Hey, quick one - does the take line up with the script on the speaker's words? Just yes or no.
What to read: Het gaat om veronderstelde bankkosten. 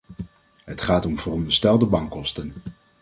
yes